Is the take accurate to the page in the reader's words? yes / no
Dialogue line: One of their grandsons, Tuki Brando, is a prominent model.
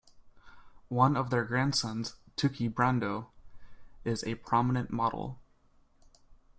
yes